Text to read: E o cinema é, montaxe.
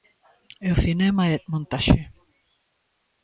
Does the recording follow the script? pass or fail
pass